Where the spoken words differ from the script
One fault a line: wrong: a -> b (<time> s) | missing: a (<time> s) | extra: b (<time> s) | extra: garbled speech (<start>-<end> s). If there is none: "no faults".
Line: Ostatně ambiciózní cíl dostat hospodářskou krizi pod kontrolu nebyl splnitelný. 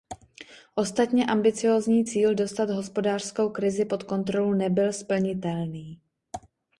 no faults